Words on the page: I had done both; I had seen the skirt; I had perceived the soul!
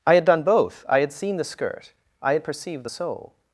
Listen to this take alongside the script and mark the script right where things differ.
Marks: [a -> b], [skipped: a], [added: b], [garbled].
I had done both; I had seen the skirt; I had perceived the soul!